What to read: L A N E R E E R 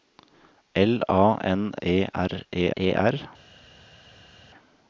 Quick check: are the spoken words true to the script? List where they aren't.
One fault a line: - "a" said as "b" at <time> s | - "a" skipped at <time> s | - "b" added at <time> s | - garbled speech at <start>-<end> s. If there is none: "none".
none